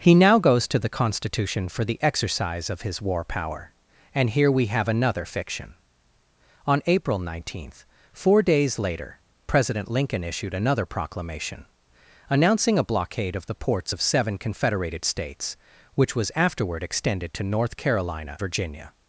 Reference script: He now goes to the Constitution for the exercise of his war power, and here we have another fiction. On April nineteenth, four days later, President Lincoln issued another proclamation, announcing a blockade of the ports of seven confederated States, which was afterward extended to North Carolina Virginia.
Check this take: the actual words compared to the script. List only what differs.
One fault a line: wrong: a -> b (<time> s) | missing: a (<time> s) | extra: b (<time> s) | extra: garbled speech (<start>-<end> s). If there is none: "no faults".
no faults